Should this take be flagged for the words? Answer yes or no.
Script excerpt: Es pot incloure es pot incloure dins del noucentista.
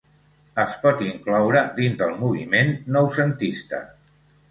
yes